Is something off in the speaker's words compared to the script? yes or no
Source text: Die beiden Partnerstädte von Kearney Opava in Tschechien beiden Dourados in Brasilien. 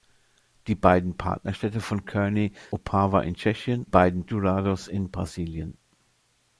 no